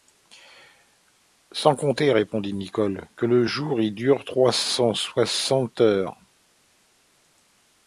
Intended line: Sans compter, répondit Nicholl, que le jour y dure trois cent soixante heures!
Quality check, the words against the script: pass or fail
pass